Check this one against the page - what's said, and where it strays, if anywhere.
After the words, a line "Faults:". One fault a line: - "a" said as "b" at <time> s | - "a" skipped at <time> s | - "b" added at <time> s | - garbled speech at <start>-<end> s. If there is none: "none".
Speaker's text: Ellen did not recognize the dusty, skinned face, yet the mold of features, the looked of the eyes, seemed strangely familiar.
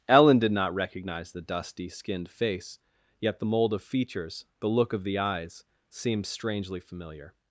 Ellen did not recognize the dusty, skinned face, yet the mold of features, the look of the eyes, seemed strangely familiar.
Faults:
- "looked" said as "look" at 4.7 s